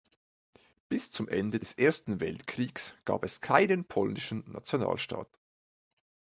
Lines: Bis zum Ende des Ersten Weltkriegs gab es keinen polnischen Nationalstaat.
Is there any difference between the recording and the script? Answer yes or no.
no